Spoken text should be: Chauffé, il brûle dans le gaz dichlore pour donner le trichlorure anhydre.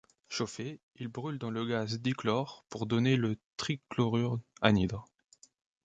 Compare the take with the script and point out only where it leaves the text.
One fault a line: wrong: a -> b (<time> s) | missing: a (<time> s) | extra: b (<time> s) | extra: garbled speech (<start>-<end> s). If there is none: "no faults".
no faults